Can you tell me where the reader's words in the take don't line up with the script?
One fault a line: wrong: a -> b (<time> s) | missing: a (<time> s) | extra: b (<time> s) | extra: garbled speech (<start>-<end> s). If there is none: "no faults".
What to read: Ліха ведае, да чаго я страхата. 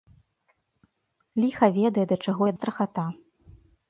no faults